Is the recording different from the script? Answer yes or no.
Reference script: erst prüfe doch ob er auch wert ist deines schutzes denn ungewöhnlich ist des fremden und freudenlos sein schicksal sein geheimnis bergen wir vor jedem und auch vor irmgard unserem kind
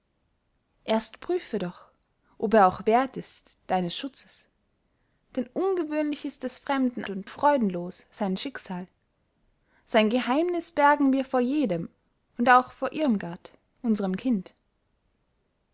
no